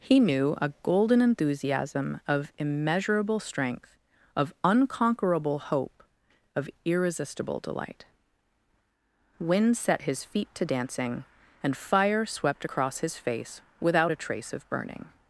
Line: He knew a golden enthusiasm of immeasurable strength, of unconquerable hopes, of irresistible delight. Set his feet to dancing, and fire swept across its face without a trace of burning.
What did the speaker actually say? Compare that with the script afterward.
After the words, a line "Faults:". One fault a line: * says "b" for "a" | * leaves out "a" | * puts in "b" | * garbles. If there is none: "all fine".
He knew a golden enthusiasm of immeasurable strength, of unconquerable hope, of irresistible delight. Wind set his feet to dancing, and fire swept across his face without a trace of burning.
Faults:
* says "hope" for "hopes"
* puts in "Wind"
* says "his" for "its"